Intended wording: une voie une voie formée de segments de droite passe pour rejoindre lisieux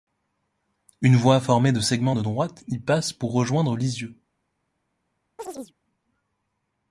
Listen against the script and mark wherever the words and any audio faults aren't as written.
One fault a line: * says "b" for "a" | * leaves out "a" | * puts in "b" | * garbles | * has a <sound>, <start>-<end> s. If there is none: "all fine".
* leaves out "une voie"
* puts in "y"
* has a chirp, 5.4-5.7 s